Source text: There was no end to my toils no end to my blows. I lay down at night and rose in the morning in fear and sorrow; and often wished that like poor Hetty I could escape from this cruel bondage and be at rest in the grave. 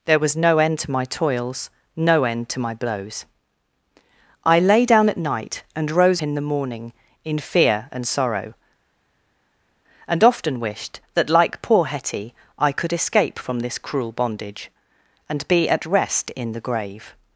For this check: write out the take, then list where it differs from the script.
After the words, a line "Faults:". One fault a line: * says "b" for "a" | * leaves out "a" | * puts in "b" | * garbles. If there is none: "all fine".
There was no end to my toils no end to my blows. I lay down at night and rose in the morning in fear and sorrow; and often wished that like poor Hetty I could escape from this cruel bondage and be at rest in the grave.
Faults:
all fine